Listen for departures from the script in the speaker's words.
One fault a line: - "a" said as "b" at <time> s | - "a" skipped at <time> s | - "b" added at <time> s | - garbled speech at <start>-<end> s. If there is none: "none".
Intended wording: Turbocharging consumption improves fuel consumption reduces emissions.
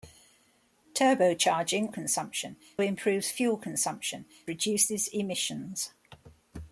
none